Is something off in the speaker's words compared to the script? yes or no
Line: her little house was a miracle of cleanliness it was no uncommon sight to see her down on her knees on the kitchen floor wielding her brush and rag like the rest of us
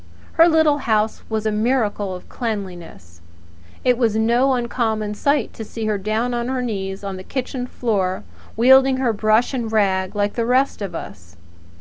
no